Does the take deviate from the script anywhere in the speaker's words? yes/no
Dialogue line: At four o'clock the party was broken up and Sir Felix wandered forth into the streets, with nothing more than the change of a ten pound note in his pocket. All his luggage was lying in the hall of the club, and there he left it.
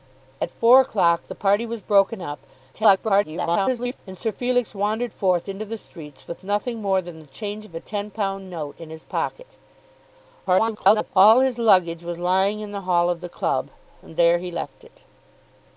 yes